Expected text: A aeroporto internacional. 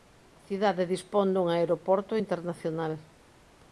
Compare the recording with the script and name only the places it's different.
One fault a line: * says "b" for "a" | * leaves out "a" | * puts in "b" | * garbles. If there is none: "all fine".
* puts in "cidade dispón dun"